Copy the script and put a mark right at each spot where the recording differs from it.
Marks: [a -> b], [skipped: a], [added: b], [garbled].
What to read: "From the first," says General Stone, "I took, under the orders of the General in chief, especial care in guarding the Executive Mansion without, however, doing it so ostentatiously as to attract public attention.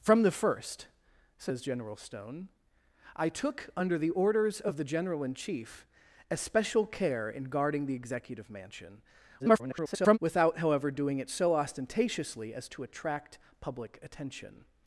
"From the first," says General Stone, "I took, under the orders of the General in chief, especial care in guarding the Executive Mansion [garbled] without, however, doing it so ostentatiously as to attract public attention.